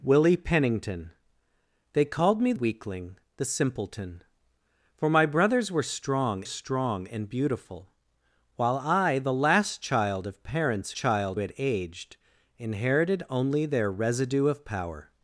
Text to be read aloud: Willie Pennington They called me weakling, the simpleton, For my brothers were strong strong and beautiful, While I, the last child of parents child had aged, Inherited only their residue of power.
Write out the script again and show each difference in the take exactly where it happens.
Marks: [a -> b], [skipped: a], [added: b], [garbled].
Willie Pennington They called me weakling, the simpleton, For my brothers were strong strong and beautiful, While I, the last child of parents child had aged, Inherited only their residue of power.